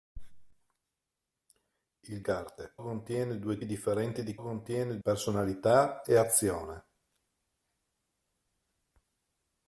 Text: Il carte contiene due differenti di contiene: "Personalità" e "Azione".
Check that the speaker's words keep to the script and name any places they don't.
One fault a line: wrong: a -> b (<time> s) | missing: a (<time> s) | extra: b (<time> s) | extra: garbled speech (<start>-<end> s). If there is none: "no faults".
no faults